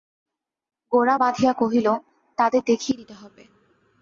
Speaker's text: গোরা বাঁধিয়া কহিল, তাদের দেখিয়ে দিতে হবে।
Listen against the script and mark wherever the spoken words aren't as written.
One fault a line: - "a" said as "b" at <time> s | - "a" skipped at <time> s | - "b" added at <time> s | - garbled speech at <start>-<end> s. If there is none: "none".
none